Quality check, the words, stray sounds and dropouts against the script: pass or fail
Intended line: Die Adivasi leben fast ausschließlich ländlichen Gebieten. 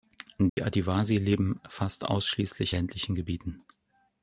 fail